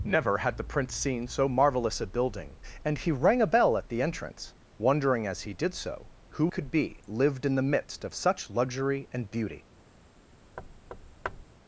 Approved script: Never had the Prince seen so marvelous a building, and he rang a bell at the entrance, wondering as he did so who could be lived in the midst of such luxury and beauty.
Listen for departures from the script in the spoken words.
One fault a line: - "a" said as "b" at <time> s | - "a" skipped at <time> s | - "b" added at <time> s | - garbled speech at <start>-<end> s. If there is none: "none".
none